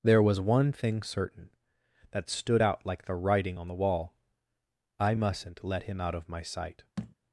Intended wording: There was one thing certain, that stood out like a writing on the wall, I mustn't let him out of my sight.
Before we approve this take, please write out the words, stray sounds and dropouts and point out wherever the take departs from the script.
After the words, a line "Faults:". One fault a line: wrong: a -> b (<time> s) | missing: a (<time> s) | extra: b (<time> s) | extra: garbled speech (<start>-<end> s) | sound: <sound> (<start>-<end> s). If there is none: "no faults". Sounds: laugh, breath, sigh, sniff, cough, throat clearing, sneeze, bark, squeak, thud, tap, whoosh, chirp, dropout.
There was one thing certain, that stood out like the writing on the wall, I mustn't let him out of my sight.
Faults:
wrong: a -> the (3.0 s)
sound: thud (7.0-7.2 s)